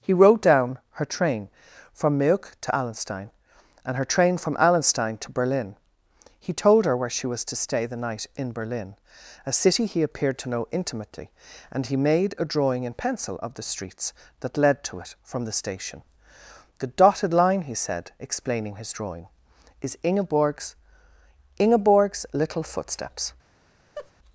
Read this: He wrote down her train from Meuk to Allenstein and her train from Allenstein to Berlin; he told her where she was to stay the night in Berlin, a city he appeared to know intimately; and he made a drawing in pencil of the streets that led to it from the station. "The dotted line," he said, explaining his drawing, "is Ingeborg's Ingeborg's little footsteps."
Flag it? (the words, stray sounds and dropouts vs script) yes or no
yes